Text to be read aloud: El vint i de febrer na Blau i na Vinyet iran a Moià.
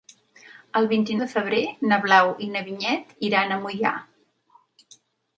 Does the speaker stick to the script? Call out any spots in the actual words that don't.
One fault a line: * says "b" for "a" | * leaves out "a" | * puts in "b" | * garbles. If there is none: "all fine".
all fine